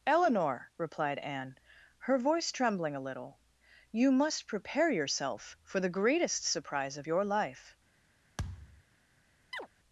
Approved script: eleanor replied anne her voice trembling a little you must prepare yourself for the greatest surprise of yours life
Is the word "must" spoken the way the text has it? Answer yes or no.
yes